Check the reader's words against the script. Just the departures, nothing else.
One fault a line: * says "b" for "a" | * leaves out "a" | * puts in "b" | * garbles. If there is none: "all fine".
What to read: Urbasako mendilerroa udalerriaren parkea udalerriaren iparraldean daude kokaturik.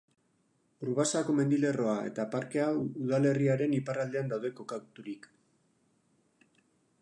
* says "eta" for "udalerriaren"